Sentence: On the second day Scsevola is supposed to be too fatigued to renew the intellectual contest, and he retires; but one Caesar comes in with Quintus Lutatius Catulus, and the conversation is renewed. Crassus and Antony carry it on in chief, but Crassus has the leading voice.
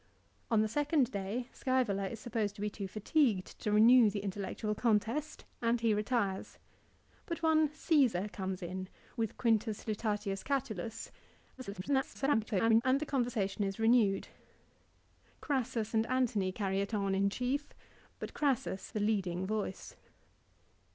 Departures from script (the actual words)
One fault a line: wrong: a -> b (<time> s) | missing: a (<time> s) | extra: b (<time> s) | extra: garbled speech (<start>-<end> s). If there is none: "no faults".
extra: garbled speech (11.6-12.8 s)
missing: has (18.9 s)